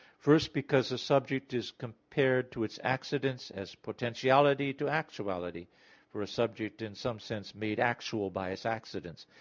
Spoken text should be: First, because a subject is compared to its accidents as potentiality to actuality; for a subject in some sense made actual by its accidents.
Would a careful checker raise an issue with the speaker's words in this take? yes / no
no